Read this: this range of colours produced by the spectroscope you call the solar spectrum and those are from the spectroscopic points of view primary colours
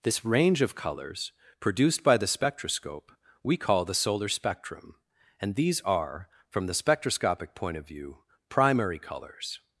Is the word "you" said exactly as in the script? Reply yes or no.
no